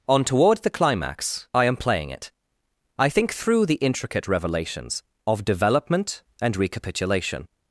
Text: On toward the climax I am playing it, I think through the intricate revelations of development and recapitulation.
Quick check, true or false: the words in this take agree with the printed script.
true